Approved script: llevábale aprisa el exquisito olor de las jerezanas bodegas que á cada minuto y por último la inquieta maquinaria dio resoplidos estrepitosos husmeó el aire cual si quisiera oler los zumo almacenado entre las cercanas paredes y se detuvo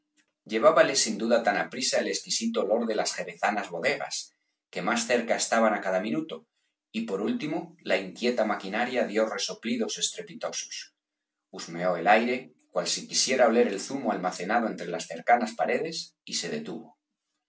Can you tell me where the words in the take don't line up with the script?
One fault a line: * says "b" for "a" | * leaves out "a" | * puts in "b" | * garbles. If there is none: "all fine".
* puts in "sin duda tan"
* puts in "más cerca estaban"
* says "el" for "los"